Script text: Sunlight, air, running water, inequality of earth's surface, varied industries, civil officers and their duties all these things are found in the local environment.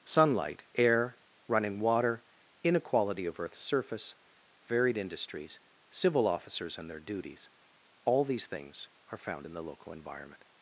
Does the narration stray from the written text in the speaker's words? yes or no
no